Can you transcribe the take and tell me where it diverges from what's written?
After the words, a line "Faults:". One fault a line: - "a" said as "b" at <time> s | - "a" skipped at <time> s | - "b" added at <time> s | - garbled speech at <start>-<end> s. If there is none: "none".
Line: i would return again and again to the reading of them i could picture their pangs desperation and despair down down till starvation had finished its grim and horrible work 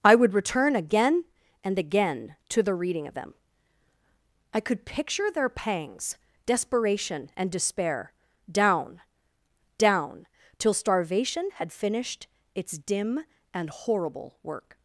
i would return again and again to the reading of them i could picture their pangs desperation and despair down down till starvation had finished its dim and horrible work
Faults:
- "grim" said as "dim" at 12.8 s